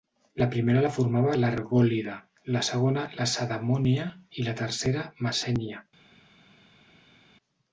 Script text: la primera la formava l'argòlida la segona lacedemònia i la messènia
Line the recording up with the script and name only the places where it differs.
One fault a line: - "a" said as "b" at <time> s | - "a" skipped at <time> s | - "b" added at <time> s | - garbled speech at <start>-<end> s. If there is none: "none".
- "tercera" added at 4.6 s